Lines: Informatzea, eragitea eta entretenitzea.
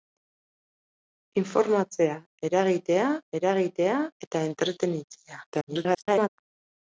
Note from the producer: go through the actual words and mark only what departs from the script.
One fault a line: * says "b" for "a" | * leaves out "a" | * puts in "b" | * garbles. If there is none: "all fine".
* puts in "eragitea"
* garbles